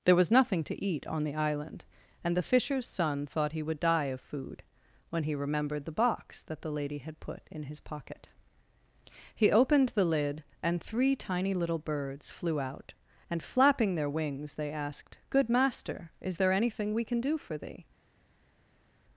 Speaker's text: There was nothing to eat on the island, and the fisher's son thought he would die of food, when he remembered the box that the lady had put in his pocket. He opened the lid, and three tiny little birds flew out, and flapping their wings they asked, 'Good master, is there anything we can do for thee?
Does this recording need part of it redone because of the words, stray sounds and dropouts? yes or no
no